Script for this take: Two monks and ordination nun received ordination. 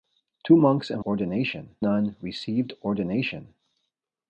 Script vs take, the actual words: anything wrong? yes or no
no